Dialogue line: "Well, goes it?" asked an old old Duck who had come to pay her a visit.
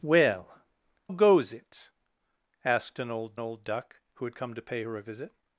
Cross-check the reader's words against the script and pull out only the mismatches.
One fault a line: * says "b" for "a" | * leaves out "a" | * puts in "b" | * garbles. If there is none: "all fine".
all fine